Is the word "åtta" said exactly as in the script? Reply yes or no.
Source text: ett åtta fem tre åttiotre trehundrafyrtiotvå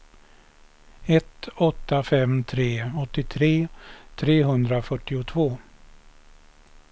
yes